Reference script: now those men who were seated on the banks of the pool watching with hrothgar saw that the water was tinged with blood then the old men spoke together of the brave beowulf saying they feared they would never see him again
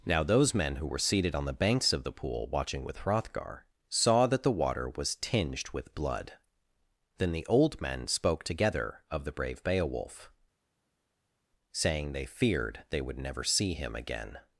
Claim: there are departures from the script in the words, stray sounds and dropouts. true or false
false